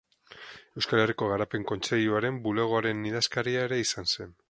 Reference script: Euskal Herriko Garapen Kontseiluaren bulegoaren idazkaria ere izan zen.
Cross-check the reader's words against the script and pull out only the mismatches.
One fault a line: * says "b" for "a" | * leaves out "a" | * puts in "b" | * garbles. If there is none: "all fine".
all fine